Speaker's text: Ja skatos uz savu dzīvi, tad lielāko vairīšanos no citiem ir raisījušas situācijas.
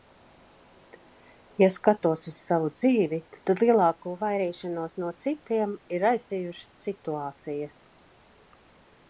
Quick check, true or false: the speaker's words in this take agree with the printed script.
true